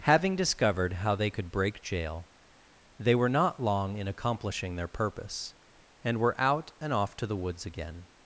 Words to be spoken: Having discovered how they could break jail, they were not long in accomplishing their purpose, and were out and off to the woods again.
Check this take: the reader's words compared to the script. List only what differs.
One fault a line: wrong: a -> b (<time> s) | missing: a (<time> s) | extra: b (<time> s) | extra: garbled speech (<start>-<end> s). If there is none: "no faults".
no faults